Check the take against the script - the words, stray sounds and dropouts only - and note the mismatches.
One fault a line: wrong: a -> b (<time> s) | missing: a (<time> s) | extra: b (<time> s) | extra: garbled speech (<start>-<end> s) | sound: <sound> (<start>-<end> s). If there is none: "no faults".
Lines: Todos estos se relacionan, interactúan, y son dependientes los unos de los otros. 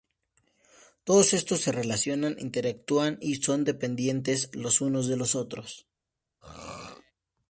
sound: throat clearing (6.4-7.1 s)